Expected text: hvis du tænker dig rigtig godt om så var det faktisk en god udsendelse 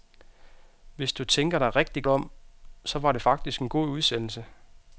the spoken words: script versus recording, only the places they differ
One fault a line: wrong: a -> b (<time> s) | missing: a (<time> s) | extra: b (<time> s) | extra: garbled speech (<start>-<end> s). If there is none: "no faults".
missing: godt (2.0 s)